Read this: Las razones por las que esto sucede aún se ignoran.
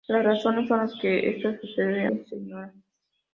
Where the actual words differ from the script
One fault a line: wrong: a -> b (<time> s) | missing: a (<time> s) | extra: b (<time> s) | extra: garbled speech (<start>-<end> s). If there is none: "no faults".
missing: aún (2.1 s)